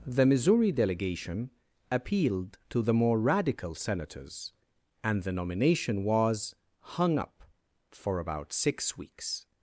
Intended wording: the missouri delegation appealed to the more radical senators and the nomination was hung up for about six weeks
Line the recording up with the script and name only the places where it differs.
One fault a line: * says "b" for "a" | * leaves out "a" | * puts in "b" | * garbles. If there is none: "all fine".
all fine